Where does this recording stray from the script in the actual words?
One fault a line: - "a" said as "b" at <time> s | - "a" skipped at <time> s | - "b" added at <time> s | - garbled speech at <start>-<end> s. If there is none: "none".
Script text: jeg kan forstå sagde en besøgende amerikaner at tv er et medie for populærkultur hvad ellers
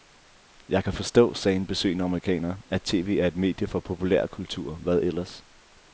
none